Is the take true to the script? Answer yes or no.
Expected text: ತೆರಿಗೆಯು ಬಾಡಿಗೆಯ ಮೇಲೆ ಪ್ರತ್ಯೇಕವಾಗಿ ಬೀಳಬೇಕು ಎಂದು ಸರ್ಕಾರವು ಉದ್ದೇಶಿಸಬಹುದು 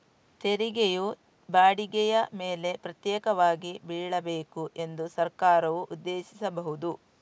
yes